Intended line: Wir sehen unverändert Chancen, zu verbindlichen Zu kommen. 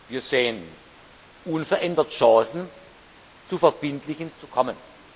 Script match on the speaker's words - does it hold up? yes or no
yes